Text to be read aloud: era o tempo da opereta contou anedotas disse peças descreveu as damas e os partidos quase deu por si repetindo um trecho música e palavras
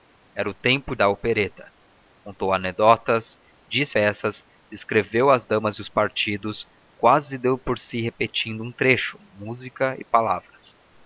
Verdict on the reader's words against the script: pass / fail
pass